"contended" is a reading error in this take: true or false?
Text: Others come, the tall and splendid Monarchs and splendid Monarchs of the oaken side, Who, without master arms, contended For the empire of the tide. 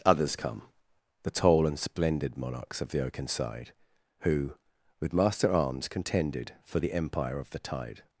false